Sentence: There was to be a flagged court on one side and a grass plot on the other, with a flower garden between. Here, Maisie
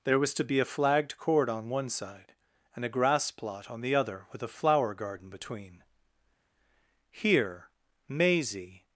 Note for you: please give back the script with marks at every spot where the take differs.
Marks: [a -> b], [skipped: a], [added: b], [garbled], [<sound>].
There was to be a flagged court on one side and a grass plot on the other, with a flower garden between. Here, Maisie